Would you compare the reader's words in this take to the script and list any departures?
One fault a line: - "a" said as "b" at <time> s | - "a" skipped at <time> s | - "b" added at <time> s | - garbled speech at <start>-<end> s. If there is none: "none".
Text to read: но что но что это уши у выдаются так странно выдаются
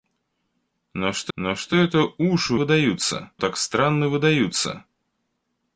none